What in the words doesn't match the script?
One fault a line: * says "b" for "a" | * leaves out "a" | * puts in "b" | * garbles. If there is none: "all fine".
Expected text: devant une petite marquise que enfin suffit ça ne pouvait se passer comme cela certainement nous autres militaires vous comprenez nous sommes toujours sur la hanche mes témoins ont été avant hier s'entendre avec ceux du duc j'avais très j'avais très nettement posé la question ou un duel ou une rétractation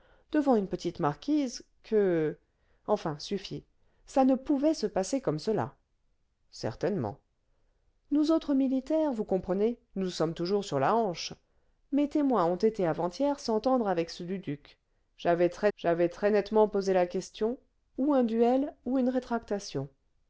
all fine